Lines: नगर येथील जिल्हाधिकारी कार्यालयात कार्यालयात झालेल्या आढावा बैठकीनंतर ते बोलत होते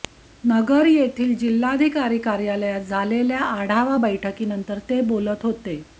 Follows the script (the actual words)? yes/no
no